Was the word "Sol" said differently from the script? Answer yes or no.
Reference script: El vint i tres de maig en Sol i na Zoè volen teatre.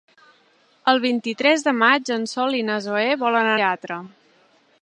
no